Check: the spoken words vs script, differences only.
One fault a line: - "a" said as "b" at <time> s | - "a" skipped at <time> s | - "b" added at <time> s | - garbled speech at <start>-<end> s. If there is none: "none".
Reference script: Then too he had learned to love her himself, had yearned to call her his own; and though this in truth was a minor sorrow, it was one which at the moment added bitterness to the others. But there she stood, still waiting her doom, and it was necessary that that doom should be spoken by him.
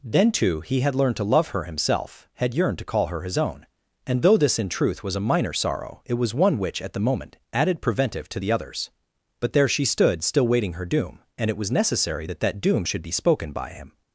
- "bitterness" said as "preventive" at 7.8 s